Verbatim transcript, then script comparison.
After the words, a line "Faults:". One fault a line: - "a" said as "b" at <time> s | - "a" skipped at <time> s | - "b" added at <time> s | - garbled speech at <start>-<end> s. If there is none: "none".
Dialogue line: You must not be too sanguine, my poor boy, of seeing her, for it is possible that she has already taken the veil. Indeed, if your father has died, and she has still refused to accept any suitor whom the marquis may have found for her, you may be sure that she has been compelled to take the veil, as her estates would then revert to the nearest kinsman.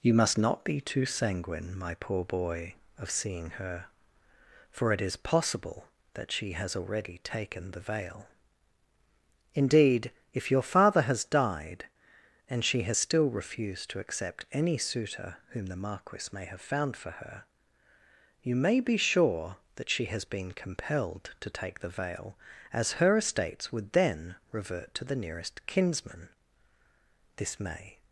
You must not be too sanguine, my poor boy, of seeing her, for it is possible that she has already taken the veil. Indeed, if your father has died, and she has still refused to accept any suitor whom the marquis may have found for her, you may be sure that she has been compelled to take the veil, as her estates would then revert to the nearest kinsman. This may
Faults:
- "This may" added at 27.4 s